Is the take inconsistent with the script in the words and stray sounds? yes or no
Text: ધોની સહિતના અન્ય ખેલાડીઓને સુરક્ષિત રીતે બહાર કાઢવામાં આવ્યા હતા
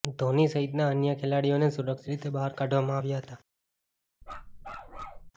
yes